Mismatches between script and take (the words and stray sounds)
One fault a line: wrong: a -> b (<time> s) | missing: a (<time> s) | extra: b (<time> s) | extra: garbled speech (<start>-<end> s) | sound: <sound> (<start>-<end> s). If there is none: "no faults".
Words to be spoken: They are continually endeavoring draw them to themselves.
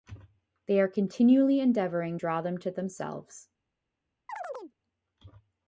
sound: chirp (4.3-4.7 s)